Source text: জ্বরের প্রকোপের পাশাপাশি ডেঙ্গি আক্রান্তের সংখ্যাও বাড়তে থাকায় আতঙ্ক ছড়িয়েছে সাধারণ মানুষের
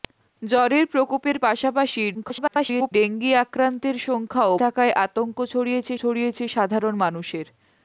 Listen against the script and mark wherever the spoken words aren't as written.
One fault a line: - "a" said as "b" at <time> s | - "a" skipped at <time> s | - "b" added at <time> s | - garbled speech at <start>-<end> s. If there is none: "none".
- garbled speech at 2.1-2.9 s
- "বাড়তে" skipped at 4.5 s
- "ছড়িয়েছে" added at 6.0 s